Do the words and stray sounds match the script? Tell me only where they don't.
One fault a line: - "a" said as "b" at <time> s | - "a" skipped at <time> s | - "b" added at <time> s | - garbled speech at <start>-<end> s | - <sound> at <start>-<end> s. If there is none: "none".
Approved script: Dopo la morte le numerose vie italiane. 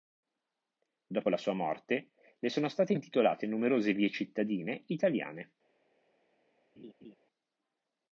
- "sua" added at 1.4 s
- "sono state intitolate" added at 2.5 s
- "cittadine" added at 4.1 s
- laugh at 6.8-7.2 s